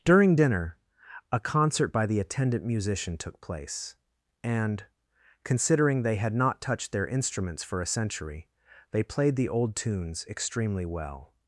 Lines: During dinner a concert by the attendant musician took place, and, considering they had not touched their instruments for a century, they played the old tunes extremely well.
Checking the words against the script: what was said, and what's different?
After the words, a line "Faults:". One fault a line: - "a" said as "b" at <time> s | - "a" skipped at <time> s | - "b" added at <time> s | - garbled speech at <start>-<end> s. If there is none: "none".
During dinner a concert by the attendant musician took place, and, considering they had not touched their instruments for a century, they played the old tunes extremely well.
Faults:
none